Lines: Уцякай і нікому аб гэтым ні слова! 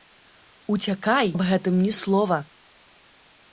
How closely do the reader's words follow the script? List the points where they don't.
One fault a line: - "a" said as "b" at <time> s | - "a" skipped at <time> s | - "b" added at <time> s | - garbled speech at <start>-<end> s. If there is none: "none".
- "і нікому" skipped at 1.3 s